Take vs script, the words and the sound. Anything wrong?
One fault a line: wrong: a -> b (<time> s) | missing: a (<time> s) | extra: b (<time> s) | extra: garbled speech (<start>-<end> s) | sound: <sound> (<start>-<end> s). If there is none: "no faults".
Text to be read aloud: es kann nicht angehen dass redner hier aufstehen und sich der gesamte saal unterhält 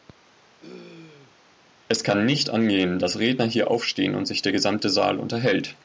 sound: throat clearing (0.6-1.4 s)